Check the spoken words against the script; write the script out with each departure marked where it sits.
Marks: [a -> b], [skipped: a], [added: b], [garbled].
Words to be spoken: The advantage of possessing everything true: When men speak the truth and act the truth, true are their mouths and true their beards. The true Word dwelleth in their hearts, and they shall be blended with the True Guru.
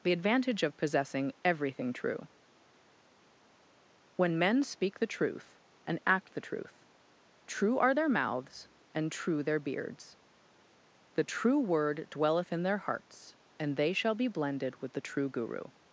The advantage of possessing everything true: When men speak the truth and act the truth, true are their mouths and true their beards. The true Word dwelleth in their hearts, and they shall be blended with the True Guru.